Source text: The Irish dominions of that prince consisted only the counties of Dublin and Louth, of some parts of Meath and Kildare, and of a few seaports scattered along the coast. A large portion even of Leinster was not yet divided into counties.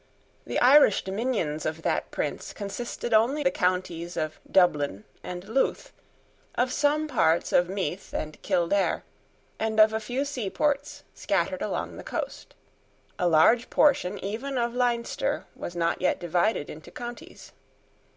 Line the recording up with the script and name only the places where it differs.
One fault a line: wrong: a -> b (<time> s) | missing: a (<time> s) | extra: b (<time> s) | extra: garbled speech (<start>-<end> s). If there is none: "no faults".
no faults